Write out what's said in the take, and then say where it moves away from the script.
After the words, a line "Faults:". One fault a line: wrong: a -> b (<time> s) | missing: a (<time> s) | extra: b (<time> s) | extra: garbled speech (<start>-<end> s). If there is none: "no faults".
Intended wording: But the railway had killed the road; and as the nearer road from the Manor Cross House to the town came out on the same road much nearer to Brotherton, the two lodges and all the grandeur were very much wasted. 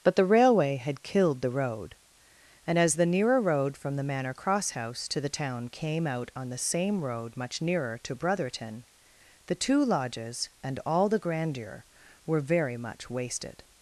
But the railway had killed the road; and as the nearer road from the Manor Cross House to the town came out on the same road much nearer to Brotherton, the two lodges and all the grandeur were very much wasted.
Faults:
no faults